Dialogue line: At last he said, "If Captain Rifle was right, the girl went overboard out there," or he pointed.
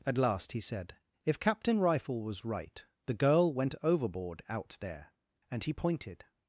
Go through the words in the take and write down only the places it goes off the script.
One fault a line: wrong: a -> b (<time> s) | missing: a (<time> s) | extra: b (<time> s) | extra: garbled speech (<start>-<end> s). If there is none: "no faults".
wrong: or -> and (5.5 s)